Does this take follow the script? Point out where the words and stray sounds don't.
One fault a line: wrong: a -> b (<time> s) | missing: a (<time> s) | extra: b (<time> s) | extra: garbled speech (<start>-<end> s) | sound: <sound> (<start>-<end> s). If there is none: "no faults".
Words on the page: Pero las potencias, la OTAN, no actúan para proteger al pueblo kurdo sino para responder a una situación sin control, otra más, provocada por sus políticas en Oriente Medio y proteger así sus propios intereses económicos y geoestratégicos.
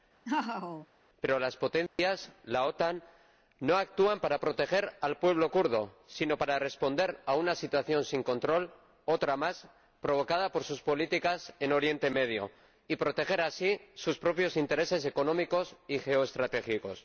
sound: laugh (0.2-0.9 s)
sound: dropout (1.9-2.0 s)